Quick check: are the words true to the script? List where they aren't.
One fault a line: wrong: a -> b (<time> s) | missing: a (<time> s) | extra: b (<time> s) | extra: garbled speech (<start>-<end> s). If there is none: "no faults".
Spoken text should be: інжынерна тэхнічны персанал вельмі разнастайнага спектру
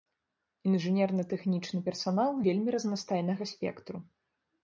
no faults